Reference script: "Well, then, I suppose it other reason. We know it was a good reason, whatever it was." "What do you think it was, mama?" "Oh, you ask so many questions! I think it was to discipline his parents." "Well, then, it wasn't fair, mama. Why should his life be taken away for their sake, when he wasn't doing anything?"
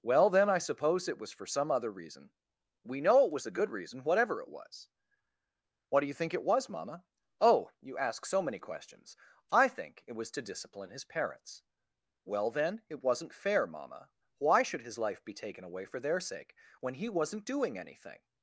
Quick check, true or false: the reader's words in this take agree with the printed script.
false